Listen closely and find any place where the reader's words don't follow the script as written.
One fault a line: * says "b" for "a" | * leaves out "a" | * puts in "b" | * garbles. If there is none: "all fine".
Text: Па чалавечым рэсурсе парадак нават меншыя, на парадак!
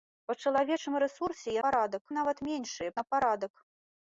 all fine